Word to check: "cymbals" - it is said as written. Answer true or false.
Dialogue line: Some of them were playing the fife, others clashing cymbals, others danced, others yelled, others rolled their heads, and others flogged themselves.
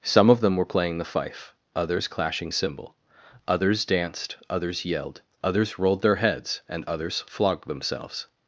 false